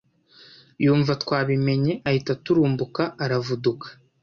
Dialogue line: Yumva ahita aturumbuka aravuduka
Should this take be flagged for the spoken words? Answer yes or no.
yes